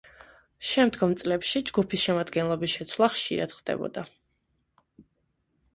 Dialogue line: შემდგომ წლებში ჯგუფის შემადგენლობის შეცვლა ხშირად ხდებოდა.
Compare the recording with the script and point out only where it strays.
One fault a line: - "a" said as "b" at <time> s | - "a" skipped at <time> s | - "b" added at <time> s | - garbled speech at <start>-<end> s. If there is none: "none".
none